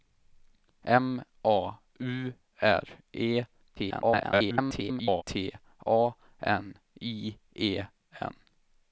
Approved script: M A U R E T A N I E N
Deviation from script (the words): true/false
true